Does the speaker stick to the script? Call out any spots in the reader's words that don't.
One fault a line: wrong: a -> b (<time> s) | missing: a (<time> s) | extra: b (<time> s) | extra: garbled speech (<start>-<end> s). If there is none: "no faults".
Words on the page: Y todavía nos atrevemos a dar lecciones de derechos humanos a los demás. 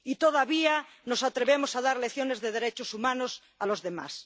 no faults